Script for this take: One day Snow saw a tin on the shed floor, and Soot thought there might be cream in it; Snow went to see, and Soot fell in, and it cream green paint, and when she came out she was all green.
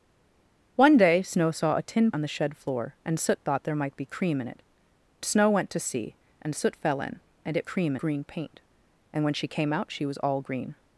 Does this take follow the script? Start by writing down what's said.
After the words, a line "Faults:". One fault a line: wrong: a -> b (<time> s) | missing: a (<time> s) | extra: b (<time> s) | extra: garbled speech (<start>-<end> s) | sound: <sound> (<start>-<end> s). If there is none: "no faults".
One day Snow saw a tin on the shed floor, and Soot thought there might be cream in it; Snow went to see, and Soot fell in, and it cream green paint, and when she came out she was all green.
Faults:
no faults